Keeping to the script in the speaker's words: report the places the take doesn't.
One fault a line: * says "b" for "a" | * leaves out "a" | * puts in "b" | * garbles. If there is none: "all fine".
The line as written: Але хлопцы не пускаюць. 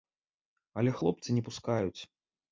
all fine